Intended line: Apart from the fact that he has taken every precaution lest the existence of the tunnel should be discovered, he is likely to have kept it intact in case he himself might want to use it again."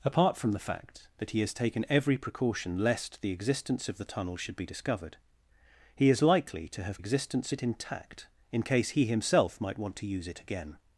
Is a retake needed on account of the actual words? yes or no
yes